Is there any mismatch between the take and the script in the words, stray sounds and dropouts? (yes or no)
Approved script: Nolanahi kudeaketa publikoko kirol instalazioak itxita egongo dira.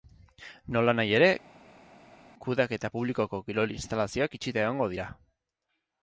yes